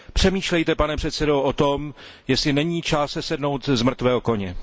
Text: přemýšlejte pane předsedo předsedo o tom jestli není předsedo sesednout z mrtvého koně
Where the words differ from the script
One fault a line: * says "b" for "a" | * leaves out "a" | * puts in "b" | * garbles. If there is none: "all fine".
* leaves out "předsedo"
* says "čas" for "předsedo"